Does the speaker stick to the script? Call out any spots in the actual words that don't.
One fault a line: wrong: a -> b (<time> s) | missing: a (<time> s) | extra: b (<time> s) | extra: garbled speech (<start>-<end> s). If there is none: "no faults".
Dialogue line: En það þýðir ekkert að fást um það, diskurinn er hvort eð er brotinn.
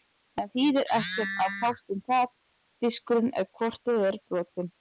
missing: það (0.5 s)